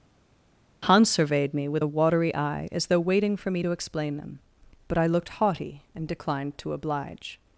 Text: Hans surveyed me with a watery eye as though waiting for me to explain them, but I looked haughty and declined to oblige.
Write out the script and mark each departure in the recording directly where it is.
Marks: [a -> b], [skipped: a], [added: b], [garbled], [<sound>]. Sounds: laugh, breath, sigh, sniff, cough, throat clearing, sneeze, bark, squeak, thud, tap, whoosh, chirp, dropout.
Hans surveyed me with a watery eye as though waiting for me to explain them, but I looked haughty and declined to oblige.